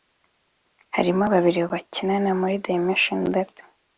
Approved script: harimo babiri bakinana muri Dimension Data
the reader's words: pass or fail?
pass